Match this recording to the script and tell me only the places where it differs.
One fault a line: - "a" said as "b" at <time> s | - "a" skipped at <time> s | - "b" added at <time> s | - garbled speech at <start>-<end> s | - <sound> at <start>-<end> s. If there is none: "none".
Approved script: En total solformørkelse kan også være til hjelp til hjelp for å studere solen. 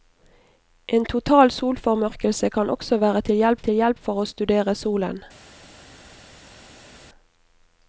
none